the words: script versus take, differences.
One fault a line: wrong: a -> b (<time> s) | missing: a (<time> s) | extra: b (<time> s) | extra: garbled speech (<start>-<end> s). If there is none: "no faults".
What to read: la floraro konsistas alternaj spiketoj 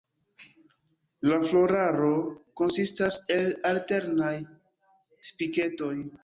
extra: el (3.4 s)